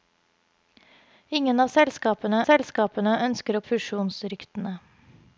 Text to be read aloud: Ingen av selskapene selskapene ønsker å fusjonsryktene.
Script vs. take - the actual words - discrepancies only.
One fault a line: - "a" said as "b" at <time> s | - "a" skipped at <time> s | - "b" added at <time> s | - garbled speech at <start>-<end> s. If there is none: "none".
none